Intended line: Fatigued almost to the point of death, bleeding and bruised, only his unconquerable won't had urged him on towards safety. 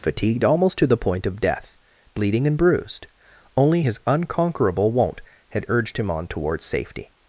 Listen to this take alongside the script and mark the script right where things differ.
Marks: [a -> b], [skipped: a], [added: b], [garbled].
Fatigued almost to the point of death, bleeding and bruised, only his unconquerable won't had urged him on towards safety.